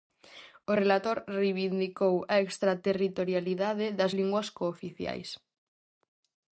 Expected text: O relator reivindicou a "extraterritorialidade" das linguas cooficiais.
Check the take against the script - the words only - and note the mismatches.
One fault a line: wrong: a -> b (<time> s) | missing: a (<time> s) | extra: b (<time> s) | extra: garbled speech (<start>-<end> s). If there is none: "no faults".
no faults